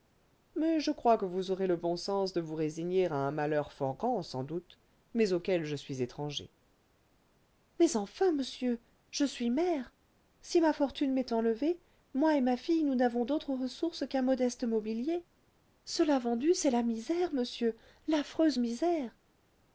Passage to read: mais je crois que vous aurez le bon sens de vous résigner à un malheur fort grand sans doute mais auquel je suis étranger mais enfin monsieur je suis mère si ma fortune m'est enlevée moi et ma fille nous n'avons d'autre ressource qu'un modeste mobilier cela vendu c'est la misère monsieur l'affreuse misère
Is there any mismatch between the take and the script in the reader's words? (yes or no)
no